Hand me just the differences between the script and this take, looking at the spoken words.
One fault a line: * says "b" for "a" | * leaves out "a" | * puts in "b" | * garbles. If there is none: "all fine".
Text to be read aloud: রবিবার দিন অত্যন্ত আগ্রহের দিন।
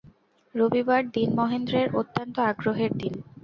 * puts in "মহেন্দ্রের"